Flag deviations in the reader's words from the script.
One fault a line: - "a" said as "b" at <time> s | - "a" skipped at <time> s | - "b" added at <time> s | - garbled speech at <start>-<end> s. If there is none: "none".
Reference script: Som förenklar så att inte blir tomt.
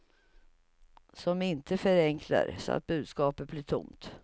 - "inte" added at 1.4 s
- "inte" said as "budskapet" at 2.9 s